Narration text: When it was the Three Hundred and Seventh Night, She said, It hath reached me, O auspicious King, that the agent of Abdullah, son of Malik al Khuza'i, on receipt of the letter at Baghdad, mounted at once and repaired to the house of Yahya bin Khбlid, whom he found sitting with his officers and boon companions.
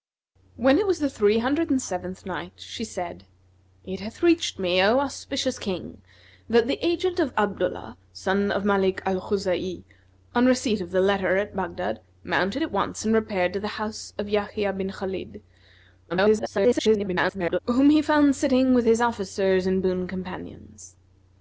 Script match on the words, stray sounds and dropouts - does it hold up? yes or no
no